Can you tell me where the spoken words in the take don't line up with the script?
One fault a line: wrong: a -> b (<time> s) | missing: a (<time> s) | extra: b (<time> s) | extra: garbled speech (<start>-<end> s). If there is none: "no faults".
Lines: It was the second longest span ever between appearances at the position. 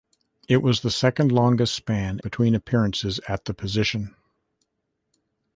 missing: ever (2.2 s)